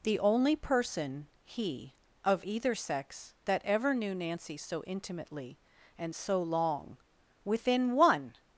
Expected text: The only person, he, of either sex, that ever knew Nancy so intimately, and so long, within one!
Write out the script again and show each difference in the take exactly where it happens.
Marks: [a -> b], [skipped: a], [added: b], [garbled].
The only person, he, of either sex, that ever knew Nancy so intimately, and so long, within one!